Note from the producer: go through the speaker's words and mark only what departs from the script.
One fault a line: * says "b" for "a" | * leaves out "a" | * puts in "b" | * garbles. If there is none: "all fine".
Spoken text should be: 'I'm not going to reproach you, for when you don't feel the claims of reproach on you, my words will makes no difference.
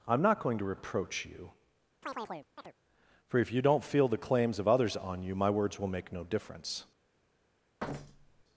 * says "if" for "when"
* says "others" for "reproach"
* says "make" for "makes"